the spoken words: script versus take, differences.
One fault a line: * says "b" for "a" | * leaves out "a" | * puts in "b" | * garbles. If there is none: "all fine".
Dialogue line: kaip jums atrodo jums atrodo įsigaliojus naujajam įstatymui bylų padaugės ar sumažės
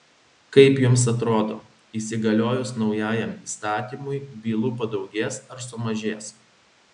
* leaves out "jums atrodo"